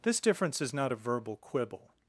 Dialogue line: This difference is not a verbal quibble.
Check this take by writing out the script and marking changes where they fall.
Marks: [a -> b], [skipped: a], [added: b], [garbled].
This difference is not a verbal quibble.